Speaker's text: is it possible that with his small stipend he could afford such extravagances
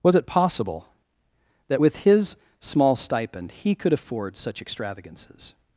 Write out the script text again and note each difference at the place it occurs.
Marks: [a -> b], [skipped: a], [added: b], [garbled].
[is -> was] it possible that with his small stipend he could afford such extravagances